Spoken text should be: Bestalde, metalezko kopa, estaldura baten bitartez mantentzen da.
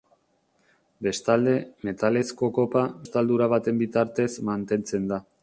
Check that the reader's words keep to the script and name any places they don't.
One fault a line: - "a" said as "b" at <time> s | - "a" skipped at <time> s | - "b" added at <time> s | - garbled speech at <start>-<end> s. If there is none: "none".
none